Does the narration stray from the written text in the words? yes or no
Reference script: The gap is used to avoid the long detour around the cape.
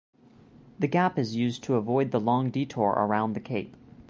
no